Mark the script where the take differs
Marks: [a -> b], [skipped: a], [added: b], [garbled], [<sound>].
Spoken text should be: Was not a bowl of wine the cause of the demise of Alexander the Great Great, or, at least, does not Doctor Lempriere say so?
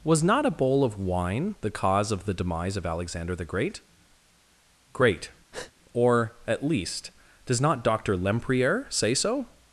Was not a bowl of wine the cause of the demise of Alexander the Great Great, [breath] or, at least, does not Doctor Lempriere say so?